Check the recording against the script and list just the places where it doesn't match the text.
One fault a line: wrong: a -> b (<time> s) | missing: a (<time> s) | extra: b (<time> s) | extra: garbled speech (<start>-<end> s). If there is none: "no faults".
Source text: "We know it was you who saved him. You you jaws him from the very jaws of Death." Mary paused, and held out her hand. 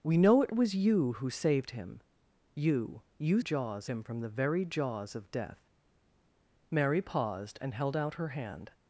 no faults